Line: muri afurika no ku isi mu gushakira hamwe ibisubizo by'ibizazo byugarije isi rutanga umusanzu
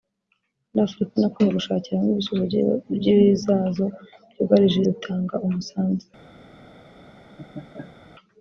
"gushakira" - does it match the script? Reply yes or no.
yes